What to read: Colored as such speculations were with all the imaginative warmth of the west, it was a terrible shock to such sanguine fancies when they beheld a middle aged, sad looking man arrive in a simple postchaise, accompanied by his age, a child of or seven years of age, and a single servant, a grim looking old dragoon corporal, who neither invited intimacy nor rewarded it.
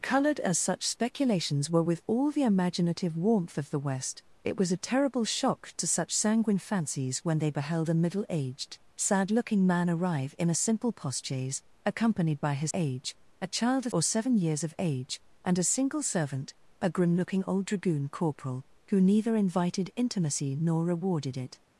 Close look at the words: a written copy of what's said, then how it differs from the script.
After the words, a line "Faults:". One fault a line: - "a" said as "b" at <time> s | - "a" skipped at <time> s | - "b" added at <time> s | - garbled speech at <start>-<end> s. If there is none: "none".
Colored as such speculations were with all the imaginative warmth of the west, it was a terrible shock to such sanguine fancies when they beheld a middle aged, sad looking man arrive in a simple postchaise, accompanied by his age, a child of or seven years of age, and a single servant, a grim looking old dragoon corporal, who neither invited intimacy nor rewarded it.
Faults:
none